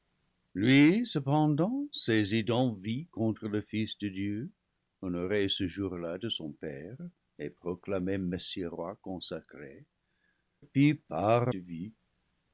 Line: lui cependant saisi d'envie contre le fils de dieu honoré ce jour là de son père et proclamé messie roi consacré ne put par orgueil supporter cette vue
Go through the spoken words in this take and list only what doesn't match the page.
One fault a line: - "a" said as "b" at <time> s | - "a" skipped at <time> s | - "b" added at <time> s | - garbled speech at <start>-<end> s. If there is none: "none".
- "ne" skipped at 9.8 s
- "orgueil supporter cette" skipped at 11.5 s